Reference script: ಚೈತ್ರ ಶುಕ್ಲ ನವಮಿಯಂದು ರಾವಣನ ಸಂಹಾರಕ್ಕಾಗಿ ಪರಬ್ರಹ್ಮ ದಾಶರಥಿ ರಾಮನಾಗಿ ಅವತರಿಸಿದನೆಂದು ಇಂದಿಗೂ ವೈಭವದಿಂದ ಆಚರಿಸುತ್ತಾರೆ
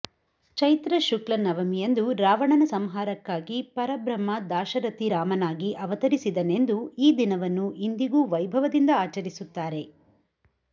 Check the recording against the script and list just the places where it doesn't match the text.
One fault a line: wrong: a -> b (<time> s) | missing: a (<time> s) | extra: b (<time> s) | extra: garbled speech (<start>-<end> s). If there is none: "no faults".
extra: ಈ ದಿನವನ್ನು (7.0 s)